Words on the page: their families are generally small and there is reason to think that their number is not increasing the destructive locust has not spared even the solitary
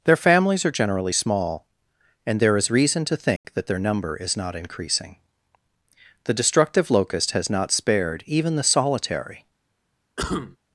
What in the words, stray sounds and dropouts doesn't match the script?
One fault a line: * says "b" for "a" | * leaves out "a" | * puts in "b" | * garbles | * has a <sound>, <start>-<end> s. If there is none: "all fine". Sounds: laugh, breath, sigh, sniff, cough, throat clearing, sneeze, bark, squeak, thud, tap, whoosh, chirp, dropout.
* has a dropout, 3.4-3.4 s
* has a cough, 10.2-10.6 s